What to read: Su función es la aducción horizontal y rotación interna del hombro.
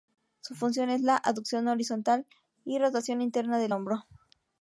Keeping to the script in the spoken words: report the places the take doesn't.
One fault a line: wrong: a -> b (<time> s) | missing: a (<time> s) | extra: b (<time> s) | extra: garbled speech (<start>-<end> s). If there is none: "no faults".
no faults